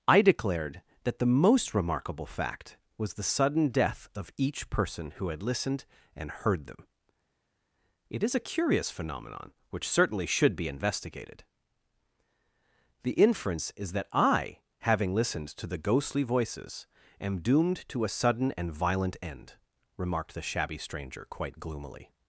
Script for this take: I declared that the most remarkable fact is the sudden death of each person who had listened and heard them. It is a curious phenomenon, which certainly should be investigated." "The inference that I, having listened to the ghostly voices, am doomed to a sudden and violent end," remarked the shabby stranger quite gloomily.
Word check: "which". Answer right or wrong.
right